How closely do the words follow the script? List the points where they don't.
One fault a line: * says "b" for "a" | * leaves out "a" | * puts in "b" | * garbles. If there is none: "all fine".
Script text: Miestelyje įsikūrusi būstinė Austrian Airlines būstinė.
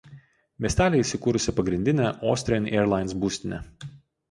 * says "pagrindinė" for "būstinė"